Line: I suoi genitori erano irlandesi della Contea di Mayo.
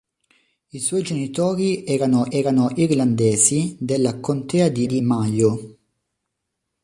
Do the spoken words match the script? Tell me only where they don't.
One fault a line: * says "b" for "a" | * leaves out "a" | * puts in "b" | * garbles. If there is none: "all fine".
* puts in "erano"
* puts in "di"